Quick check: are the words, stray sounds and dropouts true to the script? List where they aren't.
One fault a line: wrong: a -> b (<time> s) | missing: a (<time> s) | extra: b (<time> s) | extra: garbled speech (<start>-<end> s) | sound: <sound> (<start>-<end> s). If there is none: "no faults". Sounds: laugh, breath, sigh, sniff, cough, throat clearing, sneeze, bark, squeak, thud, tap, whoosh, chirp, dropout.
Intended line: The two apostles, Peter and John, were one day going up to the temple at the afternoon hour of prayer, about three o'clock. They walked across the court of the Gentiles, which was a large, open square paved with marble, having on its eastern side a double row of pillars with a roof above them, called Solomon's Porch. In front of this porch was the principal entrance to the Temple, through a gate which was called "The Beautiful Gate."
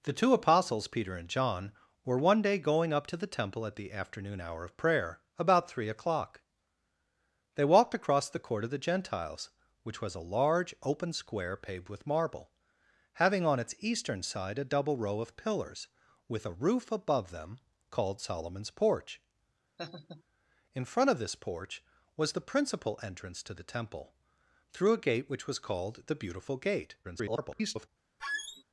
sound: laugh (19.8-20.2 s)
extra: garbled speech (27.0-27.9 s)
sound: squeak (28.2-28.6 s)